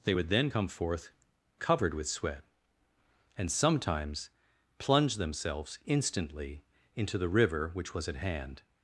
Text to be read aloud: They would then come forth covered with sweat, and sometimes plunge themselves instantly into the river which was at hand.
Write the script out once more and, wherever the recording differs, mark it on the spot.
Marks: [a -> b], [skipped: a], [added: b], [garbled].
They would then come forth covered with sweat, and sometimes plunge themselves instantly into the river which was at hand.